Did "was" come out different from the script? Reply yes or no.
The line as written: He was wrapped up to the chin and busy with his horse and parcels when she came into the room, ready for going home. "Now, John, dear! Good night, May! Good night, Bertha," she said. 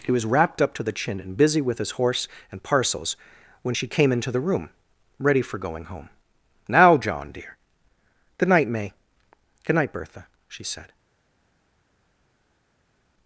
no